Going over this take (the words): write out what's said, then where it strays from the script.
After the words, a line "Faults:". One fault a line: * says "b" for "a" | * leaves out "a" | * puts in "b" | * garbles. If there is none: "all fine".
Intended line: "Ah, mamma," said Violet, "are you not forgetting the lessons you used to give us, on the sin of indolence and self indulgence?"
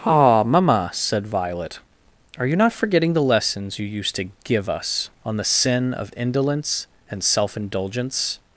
"Ah, mamma," said Violet, "are you not forgetting the lessons you used to give us, on the sin of indolence and self indulgence?"
Faults:
all fine